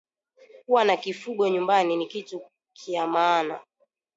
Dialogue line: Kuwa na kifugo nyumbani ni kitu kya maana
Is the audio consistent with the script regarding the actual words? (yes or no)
yes